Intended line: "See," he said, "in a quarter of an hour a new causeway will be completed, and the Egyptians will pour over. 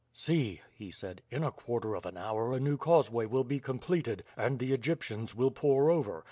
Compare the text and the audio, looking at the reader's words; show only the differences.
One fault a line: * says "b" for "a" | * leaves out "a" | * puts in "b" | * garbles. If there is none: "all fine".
all fine